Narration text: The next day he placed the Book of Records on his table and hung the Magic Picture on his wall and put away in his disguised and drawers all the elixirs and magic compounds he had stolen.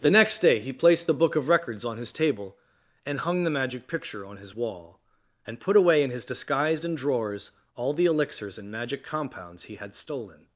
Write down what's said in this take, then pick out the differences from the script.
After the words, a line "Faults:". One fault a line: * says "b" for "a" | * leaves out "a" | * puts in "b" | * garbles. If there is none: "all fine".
The next day he placed the Book of Records on his table and hung the Magic Picture on his wall and put away in his disguised and drawers all the elixirs and magic compounds he had stolen.
Faults:
all fine